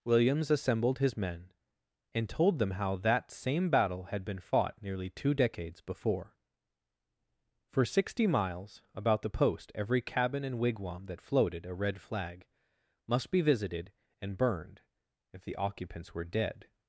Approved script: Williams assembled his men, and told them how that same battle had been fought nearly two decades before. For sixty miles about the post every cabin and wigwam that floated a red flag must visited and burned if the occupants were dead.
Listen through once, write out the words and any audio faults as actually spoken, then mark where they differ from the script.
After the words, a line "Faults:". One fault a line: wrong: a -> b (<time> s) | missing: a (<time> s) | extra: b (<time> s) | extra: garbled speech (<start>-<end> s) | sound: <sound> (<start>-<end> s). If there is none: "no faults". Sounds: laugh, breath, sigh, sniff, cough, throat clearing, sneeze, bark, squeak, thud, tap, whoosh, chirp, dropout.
Williams assembled his men, and told them how that same battle had been fought nearly two decades before. For sixty miles about the post every cabin and wigwam that floated a red flag must be visited and burned if the occupants were dead.
Faults:
extra: be (13.3 s)